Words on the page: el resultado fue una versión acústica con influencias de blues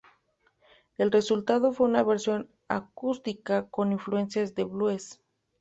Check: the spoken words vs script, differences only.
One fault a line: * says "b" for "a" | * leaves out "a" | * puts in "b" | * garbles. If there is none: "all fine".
all fine